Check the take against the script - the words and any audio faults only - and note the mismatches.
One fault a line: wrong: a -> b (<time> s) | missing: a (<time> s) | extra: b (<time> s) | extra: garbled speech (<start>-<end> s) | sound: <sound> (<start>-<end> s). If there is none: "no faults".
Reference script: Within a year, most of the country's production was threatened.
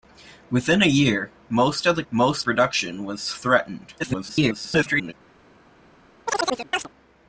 wrong: country's -> most (2.1 s)
extra: garbled speech (4.0-5.1 s)
sound: chirp (6.3-6.9 s)